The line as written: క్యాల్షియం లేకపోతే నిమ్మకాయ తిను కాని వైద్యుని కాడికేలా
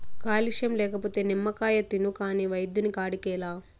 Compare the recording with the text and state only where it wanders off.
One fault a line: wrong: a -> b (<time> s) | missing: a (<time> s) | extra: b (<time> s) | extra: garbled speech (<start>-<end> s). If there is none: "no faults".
no faults